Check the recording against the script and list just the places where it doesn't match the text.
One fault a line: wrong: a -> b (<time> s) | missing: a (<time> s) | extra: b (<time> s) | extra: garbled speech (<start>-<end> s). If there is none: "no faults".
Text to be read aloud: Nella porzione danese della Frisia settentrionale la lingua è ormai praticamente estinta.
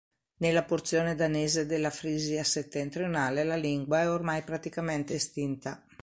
no faults